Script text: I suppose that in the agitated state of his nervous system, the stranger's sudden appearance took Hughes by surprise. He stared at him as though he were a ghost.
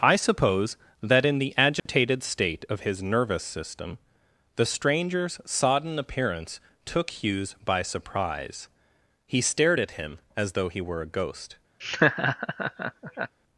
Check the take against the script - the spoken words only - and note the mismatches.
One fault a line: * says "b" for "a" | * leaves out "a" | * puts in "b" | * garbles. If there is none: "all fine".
* says "sodden" for "sudden"